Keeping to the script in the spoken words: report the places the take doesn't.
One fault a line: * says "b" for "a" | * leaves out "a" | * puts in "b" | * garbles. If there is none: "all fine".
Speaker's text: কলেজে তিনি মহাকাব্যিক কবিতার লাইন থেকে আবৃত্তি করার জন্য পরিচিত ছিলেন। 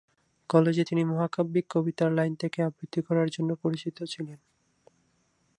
all fine